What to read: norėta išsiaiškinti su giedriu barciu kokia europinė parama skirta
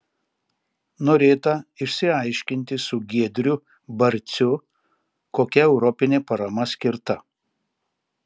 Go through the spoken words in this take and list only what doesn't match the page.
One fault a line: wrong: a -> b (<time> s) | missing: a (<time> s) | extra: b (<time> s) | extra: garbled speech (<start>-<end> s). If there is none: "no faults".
no faults